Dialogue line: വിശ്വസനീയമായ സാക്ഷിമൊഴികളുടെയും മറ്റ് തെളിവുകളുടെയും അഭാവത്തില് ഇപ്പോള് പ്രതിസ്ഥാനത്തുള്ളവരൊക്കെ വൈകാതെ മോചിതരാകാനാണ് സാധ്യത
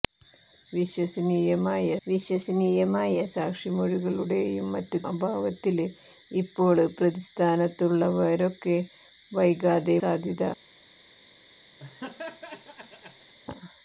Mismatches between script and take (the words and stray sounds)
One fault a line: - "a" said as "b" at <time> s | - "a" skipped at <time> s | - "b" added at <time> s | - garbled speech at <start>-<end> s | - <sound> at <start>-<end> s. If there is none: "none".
- "വിശ്വസനീയമായ" added at 2.0 s
- "തെളിവുകളുടെയും" skipped at 5.0 s
- "മോചിതരാകാനാണ്" skipped at 10.0 s
- laugh at 11.8-13.3 s